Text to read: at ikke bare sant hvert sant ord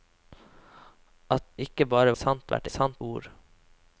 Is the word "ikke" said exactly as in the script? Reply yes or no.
yes